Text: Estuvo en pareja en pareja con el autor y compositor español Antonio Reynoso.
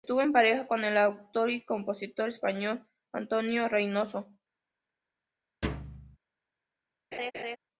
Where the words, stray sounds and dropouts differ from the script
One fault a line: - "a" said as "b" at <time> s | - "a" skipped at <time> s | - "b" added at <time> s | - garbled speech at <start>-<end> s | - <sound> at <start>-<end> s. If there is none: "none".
- "en pareja" skipped at 0.7 s
- thud at 5.6-6.2 s
- laugh at 7.1-7.6 s